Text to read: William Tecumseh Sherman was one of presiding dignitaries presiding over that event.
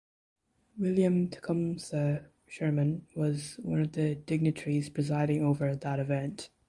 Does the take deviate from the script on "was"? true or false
false